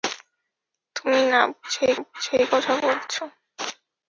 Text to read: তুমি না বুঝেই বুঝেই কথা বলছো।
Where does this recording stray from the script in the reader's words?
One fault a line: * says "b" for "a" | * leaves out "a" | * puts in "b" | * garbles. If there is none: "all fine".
all fine